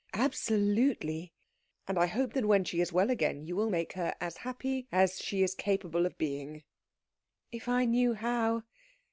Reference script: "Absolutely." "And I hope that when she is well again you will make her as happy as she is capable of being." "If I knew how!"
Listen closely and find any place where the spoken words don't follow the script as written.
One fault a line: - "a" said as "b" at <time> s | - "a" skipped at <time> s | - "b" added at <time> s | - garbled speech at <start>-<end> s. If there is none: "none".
none